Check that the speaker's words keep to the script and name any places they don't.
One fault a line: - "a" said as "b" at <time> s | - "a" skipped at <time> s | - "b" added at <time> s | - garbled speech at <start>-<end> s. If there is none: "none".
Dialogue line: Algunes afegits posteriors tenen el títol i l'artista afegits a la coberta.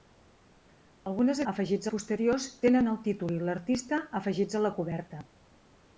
none